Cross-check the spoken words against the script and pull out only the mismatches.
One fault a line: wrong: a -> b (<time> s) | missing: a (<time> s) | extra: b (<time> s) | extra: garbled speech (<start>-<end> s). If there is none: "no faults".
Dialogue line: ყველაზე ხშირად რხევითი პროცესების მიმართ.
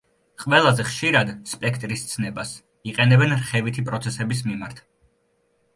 extra: სპექტრის ცნებას იყენებენ (1.5 s)